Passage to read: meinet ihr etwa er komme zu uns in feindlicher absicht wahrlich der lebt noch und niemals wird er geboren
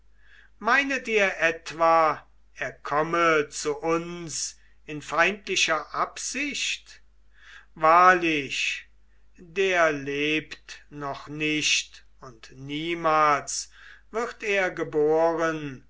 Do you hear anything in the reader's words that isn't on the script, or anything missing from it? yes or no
yes